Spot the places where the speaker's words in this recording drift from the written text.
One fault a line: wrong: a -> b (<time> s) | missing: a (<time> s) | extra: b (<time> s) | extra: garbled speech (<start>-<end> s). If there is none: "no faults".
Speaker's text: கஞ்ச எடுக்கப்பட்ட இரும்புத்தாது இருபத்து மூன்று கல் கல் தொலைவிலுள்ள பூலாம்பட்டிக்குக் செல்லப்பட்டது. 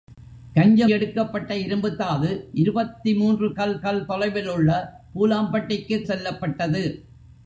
no faults